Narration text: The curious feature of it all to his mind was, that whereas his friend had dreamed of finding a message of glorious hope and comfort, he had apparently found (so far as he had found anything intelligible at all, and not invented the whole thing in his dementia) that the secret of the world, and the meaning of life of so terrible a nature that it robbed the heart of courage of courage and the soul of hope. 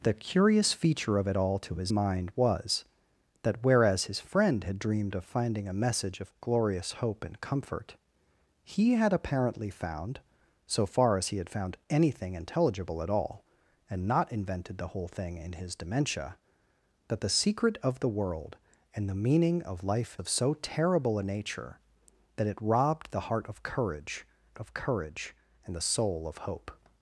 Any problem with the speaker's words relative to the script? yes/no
no